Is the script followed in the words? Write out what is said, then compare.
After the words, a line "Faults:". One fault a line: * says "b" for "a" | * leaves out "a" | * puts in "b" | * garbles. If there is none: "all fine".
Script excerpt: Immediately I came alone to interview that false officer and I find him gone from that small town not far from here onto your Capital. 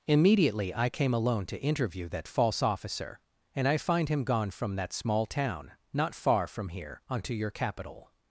Immediately I came alone to interview that false officer and I find him gone from that small town not far from here onto your Capital.
Faults:
all fine